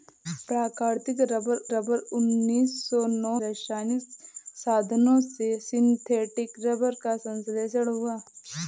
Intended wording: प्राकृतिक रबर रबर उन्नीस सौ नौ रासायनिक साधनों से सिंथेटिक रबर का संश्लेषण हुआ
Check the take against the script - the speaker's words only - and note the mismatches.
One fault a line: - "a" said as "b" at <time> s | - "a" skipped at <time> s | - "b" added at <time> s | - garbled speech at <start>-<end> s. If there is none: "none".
none